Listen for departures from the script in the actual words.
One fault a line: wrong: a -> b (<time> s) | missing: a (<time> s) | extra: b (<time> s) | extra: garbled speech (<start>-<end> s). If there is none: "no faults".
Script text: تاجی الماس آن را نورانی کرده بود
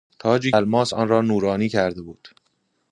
no faults